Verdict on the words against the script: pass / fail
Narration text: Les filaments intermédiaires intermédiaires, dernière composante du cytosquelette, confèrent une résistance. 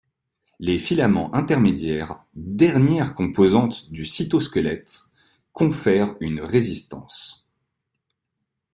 fail